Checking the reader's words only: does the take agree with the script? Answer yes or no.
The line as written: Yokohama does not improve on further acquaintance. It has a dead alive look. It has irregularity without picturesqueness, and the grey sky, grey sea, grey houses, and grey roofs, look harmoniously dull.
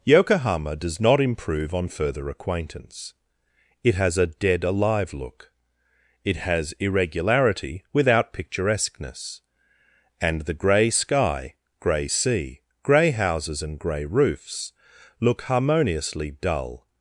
yes